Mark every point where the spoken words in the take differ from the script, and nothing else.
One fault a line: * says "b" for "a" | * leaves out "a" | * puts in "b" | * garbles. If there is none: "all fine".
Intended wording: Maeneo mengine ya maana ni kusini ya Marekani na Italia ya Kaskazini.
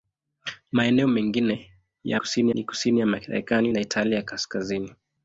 * says "kusini" for "maana"